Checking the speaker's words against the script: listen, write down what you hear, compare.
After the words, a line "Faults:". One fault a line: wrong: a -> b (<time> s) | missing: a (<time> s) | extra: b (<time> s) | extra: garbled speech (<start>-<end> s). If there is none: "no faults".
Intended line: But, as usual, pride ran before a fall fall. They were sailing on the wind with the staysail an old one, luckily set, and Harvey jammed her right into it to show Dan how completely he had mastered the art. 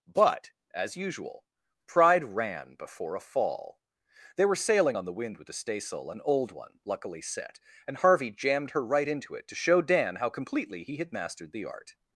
But, as usual, pride ran before a fall. They were sailing on the wind with the staysail an old one, luckily set, and Harvey jammed her right into it to show Dan how completely he had mastered the art.
Faults:
missing: fall (3.8 s)